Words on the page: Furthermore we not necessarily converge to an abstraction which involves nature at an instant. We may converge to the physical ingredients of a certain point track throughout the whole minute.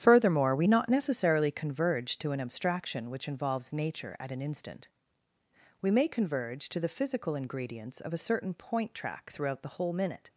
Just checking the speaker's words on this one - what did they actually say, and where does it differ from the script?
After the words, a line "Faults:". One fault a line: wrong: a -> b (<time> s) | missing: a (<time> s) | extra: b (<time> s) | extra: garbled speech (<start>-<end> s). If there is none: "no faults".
Furthermore we not necessarily converge to an abstraction which involves nature at an instant. We may converge to the physical ingredients of a certain point track throughout the whole minute.
Faults:
no faults